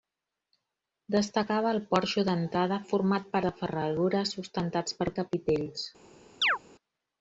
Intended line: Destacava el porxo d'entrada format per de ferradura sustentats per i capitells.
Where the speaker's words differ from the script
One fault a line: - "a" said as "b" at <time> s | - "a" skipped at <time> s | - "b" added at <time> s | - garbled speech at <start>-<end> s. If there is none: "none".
none